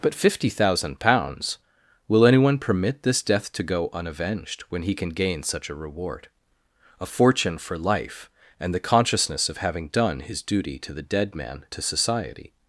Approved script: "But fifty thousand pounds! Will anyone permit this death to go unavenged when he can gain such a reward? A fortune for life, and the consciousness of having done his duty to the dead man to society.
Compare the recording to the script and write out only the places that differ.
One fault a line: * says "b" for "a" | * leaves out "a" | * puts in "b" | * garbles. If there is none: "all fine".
all fine